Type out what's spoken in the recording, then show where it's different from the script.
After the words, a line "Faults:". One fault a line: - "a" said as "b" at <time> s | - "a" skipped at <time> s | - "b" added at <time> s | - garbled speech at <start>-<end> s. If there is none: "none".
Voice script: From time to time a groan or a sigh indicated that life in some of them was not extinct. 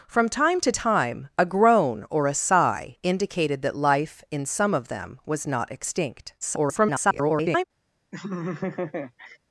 From time to time a groan or a sigh indicated that life in some of them was not extinct. [garbled]
Faults:
- garbled speech at 6.4-7.6 s